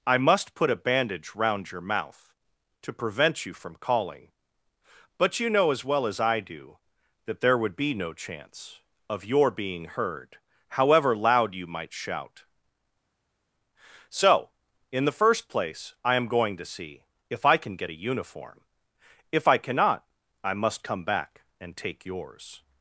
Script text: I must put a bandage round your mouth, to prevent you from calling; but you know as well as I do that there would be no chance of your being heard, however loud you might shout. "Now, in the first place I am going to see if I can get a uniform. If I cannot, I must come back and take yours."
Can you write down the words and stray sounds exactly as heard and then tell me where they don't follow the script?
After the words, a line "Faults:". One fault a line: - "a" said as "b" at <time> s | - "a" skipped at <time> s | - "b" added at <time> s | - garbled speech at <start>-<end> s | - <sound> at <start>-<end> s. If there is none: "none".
I must put a bandage round your mouth, to prevent you from calling; but you know as well as I do that there would be no chance of your being heard, however loud you might shout. "So, in the first place I am going to see if I can get a uniform. If I cannot, I must come back and take yours."
Faults:
- "Now" said as "So" at 14.1 s